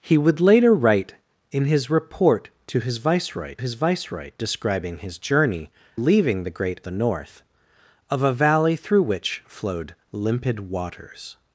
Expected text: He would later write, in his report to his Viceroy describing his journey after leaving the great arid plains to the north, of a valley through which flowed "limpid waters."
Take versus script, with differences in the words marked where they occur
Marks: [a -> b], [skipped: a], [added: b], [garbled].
He would later write, in his report to his Viceroy [added: his Viceroy] describing his journey [skipped: after] leaving the great [skipped: arid plains to] the north, of a valley through which flowed "limpid waters."